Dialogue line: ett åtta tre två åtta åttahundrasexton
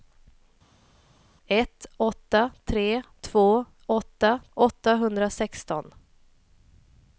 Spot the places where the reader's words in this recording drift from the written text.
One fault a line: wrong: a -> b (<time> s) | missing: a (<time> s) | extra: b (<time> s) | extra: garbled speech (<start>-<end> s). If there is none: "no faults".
no faults